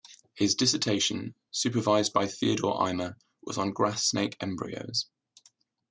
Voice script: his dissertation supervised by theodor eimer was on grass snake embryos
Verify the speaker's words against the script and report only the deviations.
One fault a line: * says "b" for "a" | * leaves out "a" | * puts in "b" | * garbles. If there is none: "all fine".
all fine